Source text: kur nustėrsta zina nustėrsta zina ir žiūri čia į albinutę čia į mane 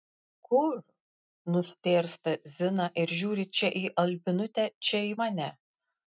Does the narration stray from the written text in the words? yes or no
yes